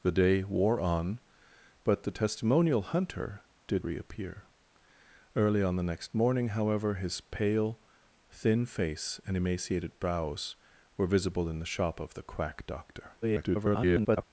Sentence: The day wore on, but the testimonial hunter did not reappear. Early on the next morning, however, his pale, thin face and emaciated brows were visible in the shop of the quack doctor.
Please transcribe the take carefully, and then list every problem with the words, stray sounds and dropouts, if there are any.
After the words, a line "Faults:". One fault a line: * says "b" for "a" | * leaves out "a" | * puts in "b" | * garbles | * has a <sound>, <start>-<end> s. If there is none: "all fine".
The day wore on, but the testimonial hunter did reappear. Early on the next morning, however, his pale, thin face and emaciated brows were visible in the shop of the quack doctor. [garbled]
Faults:
* leaves out "not"
* garbles